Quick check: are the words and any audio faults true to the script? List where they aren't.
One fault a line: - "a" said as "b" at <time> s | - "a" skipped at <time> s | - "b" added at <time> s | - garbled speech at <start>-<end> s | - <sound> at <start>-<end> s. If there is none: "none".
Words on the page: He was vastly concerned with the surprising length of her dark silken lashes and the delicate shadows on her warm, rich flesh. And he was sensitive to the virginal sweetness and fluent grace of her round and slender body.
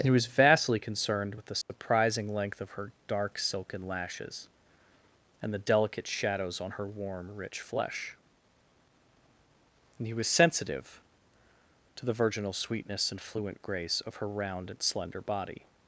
- "and" added at 0.0 s
- dropout at 1.6-1.7 s